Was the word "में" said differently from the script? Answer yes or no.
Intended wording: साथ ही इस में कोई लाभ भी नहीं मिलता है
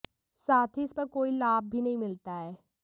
yes